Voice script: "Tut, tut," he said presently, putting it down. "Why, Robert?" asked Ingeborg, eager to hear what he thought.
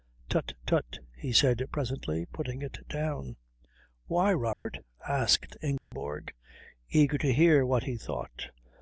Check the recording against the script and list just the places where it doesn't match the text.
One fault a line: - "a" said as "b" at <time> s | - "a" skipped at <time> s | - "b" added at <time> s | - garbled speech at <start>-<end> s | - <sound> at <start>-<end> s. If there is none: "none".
- dropout at 4.5-4.7 s
- dropout at 5.8-5.9 s